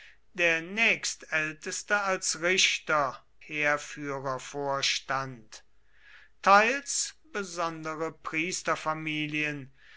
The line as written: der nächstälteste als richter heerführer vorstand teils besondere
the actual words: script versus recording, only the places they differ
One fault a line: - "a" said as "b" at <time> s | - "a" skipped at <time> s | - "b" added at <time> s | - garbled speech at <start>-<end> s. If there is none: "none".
none